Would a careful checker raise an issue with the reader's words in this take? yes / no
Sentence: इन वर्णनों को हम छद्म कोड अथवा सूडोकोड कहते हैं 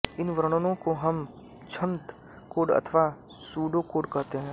no